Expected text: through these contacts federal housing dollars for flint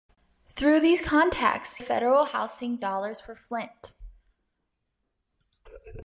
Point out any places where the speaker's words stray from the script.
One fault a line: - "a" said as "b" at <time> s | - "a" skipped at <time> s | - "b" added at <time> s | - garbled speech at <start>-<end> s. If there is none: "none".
none